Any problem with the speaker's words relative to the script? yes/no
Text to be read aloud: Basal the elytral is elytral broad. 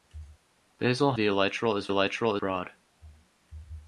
no